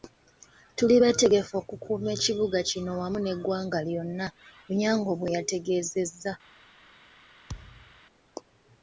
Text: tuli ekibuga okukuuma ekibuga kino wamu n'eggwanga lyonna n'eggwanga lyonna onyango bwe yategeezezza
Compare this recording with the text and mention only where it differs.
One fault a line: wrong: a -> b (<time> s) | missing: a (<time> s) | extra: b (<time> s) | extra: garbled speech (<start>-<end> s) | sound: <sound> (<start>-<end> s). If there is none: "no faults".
wrong: ekibuga -> beetegefu (1.0 s)
missing: n'eggwanga lyonna (4.3 s)
sound: thud (7.5-8.0 s)